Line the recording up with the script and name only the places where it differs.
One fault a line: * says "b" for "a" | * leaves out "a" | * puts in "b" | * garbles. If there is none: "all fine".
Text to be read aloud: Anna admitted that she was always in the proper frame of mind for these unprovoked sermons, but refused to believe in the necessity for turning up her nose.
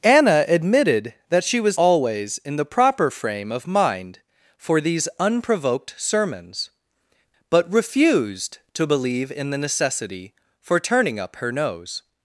all fine